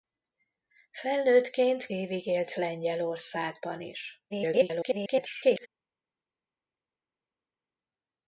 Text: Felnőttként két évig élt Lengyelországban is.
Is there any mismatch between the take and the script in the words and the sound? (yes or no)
yes